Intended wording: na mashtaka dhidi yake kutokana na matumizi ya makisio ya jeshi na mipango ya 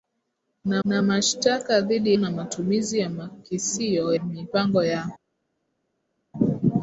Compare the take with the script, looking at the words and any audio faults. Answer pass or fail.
fail